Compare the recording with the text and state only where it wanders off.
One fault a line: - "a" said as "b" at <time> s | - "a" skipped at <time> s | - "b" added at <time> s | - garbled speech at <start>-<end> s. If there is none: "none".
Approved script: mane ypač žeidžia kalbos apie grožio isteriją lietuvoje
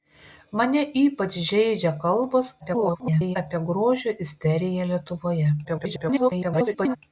- garbled speech at 2.6-3.4 s
- garbled speech at 5.6-7.0 s